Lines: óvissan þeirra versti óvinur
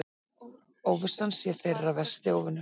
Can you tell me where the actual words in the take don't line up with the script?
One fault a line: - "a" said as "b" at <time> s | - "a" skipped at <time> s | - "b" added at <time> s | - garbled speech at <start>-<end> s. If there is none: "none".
- "sé" added at 1.4 s